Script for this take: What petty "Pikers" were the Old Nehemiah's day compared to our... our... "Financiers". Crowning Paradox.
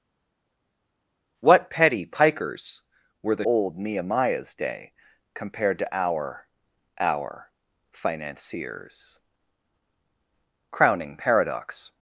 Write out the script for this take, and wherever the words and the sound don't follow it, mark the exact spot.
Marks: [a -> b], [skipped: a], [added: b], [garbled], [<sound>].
What petty "Pikers" were the Old Nehemiah's day compared to our... our... "Financiers". Crowning Paradox.